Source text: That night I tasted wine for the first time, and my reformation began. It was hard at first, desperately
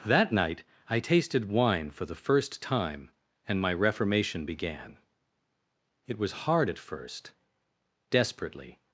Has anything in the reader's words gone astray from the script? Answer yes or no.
no